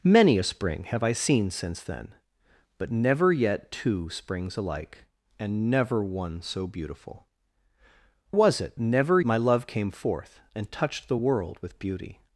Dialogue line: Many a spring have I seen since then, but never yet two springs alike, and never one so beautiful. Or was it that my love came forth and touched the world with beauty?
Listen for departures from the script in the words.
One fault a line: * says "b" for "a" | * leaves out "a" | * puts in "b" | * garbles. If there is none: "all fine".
* leaves out "Or"
* says "never" for "that"